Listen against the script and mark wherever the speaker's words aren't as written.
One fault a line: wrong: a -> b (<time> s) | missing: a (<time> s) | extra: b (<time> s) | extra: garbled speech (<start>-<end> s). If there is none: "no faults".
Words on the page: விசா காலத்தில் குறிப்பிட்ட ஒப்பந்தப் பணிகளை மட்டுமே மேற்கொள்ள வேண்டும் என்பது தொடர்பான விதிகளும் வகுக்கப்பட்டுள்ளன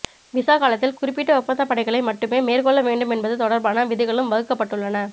no faults